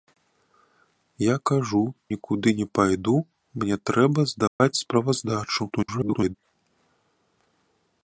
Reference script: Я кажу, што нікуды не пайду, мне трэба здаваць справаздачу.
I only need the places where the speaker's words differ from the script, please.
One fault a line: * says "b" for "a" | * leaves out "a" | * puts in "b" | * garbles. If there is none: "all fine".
* leaves out "што"
* garbles